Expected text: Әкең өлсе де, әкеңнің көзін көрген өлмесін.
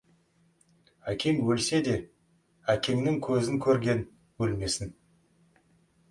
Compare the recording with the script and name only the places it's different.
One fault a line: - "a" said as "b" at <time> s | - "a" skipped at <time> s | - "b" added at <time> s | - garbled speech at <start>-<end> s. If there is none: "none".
none